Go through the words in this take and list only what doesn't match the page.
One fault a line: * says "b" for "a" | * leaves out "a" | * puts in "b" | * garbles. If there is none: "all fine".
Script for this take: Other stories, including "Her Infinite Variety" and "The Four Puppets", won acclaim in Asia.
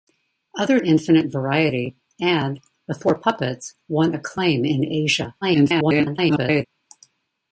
* leaves out "stories including Her"
* garbles